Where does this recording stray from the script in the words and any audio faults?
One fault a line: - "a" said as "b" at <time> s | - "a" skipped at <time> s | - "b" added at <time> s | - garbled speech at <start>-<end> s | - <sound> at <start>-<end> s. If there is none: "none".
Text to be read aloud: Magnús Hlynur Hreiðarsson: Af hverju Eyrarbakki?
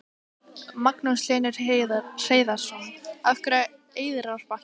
none